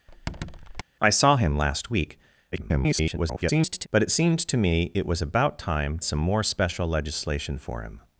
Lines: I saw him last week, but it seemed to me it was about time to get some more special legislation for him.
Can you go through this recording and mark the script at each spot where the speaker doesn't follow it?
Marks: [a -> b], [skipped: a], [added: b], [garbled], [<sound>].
[squeak] I saw him last week, [garbled] but it seemed to me it was about time [skipped: to get] some more special legislation for him.